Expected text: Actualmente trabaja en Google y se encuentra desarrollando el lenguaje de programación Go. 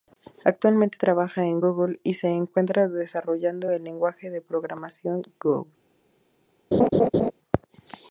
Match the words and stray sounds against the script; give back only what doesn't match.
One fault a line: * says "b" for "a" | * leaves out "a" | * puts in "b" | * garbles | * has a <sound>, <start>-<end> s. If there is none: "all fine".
* has a laugh, 6.7-7.3 s